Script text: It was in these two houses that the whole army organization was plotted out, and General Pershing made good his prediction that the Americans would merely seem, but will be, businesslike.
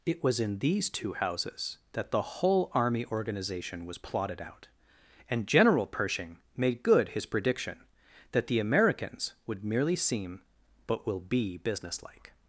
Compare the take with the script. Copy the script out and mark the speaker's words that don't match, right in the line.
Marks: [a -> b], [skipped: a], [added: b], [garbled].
It was in these two houses that the whole army organization was plotted out, and General Pershing made good his prediction that the Americans would merely seem, but will be, businesslike.